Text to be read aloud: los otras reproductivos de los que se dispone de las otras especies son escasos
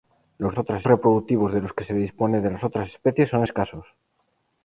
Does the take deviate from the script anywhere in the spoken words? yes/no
no